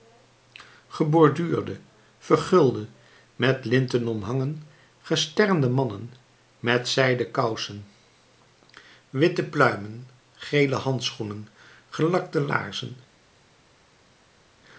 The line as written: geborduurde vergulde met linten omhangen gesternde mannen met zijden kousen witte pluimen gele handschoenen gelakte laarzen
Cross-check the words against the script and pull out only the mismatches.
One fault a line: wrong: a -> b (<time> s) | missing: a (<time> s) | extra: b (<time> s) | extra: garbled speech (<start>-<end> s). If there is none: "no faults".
no faults